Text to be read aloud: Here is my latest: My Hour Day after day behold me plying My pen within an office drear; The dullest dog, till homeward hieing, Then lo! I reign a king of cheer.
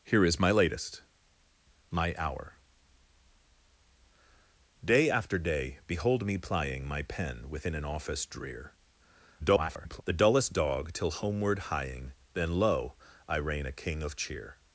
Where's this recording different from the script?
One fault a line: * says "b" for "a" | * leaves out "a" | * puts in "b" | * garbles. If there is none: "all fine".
* garbles